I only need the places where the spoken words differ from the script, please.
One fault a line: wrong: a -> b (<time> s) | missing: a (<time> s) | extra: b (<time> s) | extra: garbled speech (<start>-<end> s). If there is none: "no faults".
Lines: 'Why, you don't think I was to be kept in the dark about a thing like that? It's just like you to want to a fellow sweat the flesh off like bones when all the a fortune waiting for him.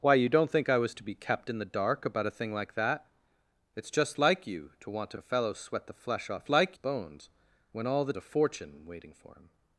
no faults